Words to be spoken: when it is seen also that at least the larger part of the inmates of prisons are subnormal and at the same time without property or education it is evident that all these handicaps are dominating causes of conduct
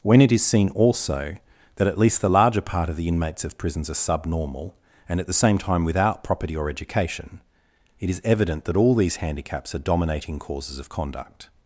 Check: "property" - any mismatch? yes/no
no